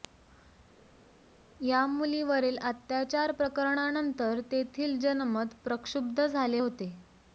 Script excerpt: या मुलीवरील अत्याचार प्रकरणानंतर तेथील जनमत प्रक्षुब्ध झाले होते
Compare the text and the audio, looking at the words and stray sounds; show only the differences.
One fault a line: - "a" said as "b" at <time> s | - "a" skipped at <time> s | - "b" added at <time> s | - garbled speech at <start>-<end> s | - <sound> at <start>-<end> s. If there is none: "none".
none